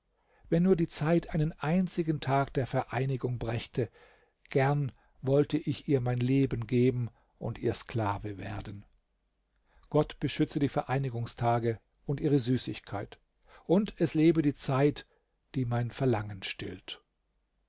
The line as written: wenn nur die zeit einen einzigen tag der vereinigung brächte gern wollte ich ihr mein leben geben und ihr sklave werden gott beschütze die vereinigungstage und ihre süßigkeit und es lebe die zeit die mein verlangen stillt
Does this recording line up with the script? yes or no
yes